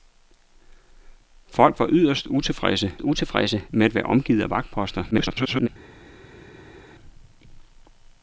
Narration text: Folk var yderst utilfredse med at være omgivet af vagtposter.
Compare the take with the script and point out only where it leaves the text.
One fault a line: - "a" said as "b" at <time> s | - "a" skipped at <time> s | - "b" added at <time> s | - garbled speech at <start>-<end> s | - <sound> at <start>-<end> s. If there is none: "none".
- "utilfredse" added at 3.0 s
- garbled speech at 5.1-5.7 s